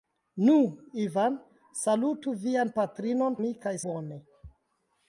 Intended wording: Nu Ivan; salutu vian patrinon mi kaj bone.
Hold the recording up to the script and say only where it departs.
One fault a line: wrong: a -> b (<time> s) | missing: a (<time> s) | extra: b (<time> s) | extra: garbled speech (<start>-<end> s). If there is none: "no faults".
no faults